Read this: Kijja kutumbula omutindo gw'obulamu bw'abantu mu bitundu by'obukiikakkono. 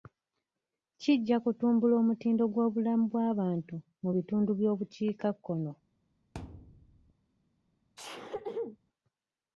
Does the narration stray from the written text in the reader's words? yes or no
no